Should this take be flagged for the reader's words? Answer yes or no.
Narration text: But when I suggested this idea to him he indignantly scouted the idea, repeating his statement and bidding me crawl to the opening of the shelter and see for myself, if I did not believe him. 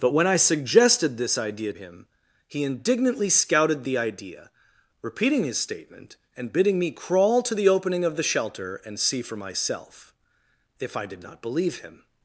yes